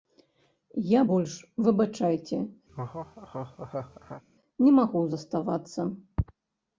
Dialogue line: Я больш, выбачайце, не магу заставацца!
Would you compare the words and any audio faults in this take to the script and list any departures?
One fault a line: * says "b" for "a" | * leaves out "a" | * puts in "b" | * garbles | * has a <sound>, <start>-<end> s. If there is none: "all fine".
* has a laugh, 2.7-4.2 s